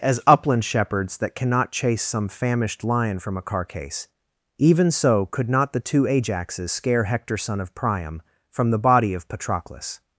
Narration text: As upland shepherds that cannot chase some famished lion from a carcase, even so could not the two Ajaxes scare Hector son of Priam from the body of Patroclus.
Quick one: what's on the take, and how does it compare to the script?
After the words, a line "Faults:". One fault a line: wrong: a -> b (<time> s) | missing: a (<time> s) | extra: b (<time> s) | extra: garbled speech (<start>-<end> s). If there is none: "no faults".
As upland shepherds that cannot chase some famished lion from a carcase, even so could not the two Ajaxes scare Hector son of Priam from the body of Patroclus.
Faults:
no faults